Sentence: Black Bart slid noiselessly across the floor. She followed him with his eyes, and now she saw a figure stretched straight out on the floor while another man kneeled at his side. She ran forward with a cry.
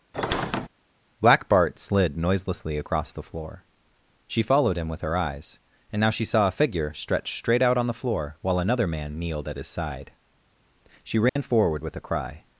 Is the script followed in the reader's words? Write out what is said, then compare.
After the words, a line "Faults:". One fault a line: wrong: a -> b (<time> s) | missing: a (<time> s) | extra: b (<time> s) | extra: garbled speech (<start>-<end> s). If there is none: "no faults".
Black Bart slid noiselessly across the floor. She followed him with her eyes, and now she saw a figure stretched straight out on the floor while another man kneeled at his side. She ran forward with a cry.
Faults:
wrong: his -> her (5.0 s)